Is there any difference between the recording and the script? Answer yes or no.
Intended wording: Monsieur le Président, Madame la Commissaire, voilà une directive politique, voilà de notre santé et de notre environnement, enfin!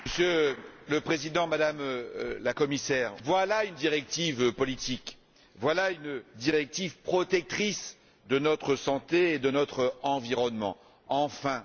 yes